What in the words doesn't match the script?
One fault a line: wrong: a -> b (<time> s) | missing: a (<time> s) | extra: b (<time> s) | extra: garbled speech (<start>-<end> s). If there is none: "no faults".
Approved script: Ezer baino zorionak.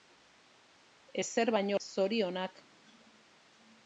no faults